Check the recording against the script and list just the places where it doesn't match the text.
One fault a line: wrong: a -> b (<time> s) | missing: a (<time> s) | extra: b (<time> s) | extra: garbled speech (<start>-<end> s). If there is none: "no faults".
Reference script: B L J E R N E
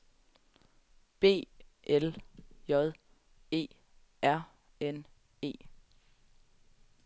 no faults